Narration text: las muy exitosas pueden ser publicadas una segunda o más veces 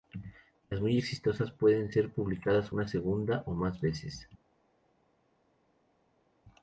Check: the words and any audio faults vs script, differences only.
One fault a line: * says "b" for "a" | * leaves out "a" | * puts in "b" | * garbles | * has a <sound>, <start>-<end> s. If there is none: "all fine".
all fine